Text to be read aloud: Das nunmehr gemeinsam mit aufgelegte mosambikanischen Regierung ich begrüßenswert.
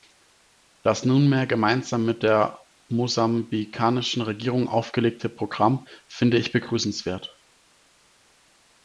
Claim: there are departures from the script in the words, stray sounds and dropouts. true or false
true